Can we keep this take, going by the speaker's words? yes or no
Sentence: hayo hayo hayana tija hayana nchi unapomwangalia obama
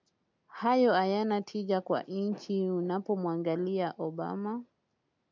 no